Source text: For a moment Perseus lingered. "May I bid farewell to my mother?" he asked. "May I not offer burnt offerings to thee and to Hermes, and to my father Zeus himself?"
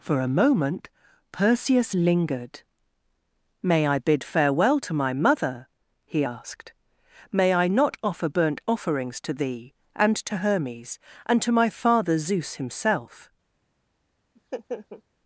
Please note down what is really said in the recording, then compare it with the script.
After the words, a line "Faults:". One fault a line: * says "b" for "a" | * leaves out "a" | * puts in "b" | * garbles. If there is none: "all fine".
For a moment Perseus lingered. "May I bid farewell to my mother?" he asked. "May I not offer burnt offerings to thee and to Hermes, and to my father Zeus himself?"
Faults:
all fine